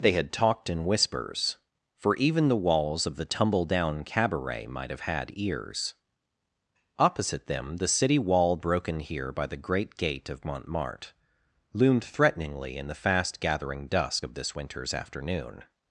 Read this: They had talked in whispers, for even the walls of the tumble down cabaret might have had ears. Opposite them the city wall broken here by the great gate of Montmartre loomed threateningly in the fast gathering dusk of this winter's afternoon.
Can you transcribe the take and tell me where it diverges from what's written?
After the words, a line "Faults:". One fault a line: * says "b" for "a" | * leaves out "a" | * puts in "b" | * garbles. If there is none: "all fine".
They had talked in whispers, for even the walls of the tumble down cabaret might have had ears. Opposite them the city wall broken here by the great gate of Montmartre loomed threateningly in the fast gathering dusk of this winter's afternoon.
Faults:
all fine